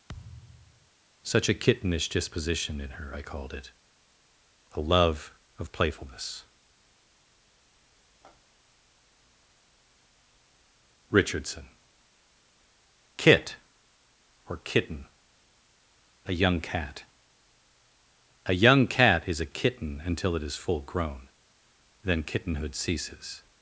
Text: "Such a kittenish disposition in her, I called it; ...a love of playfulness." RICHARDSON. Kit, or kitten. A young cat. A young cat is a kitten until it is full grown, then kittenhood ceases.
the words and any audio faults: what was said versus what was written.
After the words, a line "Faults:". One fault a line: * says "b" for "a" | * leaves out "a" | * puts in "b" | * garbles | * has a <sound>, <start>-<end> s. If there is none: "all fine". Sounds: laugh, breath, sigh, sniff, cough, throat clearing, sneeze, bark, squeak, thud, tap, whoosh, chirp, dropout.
"Such a kittenish disposition in her, I called it; ...a love of playfulness." RICHARDSON. Kit, or kitten. A young cat. A young cat is a kitten until it is full grown, then kittenhood ceases.
Faults:
* has a thud, 0.1-0.9 s